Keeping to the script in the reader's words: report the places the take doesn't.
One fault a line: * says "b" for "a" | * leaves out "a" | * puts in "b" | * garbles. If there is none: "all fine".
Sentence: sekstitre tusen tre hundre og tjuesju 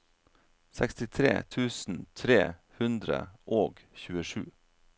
all fine